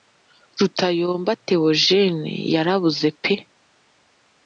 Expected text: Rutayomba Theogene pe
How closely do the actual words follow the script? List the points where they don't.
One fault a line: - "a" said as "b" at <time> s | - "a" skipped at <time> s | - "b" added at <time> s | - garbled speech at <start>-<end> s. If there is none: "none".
- "yarabuze" added at 2.5 s